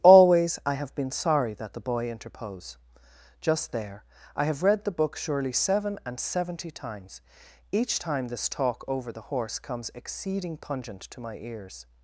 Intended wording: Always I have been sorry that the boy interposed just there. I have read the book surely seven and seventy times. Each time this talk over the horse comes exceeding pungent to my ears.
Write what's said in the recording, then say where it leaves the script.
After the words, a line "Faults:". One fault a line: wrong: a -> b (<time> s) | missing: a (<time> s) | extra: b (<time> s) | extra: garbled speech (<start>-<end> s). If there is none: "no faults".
Always I have been sorry that the boy interpose just there. I have read the book surely seven and seventy times. Each time this talk over the horse comes exceeding pungent to my ears.
Faults:
wrong: interposed -> interpose (2.1 s)